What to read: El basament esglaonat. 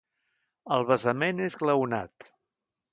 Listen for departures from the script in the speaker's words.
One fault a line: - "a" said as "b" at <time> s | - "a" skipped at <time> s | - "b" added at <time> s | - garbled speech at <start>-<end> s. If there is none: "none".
none